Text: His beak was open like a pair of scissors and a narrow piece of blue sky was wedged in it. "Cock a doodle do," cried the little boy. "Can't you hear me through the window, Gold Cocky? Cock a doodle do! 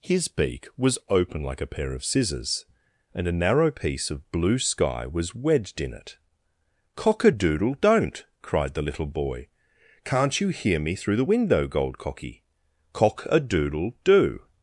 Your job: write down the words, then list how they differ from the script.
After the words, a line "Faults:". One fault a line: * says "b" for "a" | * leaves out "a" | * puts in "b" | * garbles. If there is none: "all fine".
His beak was open like a pair of scissors and a narrow piece of blue sky was wedged in it. "Cock a doodle don't," cried the little boy. "Can't you hear me through the window, Gold Cocky? Cock a doodle do!
Faults:
* says "don't" for "do"